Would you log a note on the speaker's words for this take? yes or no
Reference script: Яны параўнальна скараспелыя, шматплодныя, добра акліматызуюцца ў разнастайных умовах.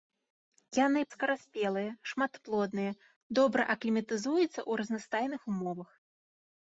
yes